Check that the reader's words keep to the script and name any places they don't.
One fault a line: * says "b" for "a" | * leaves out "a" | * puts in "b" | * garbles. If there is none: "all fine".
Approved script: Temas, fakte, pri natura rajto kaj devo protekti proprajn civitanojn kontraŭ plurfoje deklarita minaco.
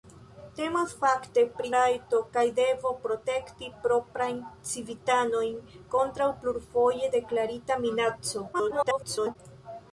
* leaves out "natura"
* garbles